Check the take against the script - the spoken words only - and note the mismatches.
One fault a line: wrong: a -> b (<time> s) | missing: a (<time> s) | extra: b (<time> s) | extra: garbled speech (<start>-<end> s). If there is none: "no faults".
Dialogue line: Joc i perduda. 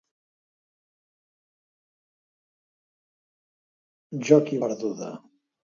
no faults